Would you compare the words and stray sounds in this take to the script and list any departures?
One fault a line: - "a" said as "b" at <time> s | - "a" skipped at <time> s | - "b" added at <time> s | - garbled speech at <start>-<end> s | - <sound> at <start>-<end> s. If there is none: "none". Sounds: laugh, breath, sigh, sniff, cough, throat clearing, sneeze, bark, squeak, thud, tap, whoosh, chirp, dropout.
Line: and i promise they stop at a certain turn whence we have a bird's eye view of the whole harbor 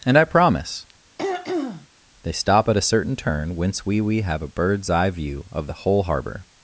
- throat clearing at 1.2-1.9 s
- "we" added at 4.0 s